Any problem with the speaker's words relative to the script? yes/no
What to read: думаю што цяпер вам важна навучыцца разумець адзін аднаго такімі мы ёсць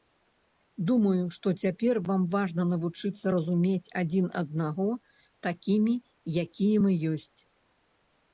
yes